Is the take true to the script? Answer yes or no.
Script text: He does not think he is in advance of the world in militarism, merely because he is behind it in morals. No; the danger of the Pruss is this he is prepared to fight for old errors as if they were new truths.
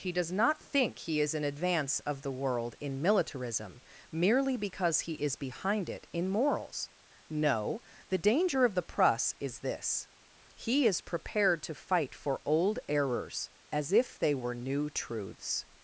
yes